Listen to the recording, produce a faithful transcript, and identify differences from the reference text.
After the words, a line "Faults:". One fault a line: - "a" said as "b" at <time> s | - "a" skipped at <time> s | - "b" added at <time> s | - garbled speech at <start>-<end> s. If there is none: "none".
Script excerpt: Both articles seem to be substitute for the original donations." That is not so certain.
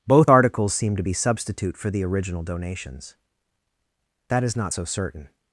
Both articles seem to be substitute for the original donations." That is not so certain.
Faults:
none